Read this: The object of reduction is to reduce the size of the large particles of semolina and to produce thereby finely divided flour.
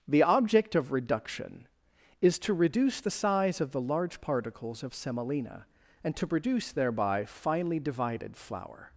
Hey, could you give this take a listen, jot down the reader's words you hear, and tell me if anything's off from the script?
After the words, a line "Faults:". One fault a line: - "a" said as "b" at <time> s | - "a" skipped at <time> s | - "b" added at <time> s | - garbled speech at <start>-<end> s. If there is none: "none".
The object of reduction is to reduce the size of the large particles of semolina and to produce thereby finely divided flour.
Faults:
none